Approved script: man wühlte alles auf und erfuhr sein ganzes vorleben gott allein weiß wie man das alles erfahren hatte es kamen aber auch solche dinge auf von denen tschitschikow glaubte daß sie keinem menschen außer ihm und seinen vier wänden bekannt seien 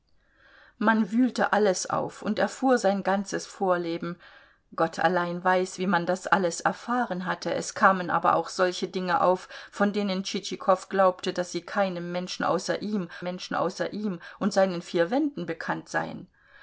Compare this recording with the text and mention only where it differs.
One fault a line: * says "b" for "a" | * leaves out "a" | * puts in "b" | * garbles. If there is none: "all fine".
* puts in "menschen außer ihm"